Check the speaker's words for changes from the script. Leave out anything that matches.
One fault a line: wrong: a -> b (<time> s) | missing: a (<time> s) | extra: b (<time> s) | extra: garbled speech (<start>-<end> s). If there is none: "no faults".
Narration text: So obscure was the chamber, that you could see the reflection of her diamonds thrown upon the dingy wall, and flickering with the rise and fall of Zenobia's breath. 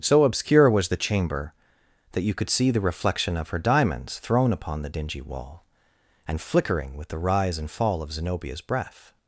no faults